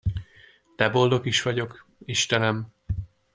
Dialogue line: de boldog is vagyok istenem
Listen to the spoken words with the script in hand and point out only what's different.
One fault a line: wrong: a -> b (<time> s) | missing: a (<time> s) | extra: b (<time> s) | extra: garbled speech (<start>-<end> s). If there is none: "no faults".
no faults